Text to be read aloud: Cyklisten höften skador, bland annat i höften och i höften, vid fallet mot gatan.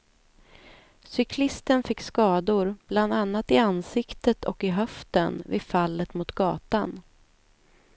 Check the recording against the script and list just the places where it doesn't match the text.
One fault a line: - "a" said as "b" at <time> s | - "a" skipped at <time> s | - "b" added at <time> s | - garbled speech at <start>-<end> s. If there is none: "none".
- "höften" said as "fick" at 1.8 s
- "höften" said as "ansiktet" at 3.6 s